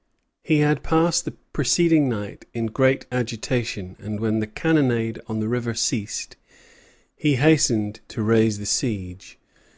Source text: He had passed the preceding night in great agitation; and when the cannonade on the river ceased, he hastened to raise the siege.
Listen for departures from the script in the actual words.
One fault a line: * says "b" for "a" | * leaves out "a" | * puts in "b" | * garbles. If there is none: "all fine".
all fine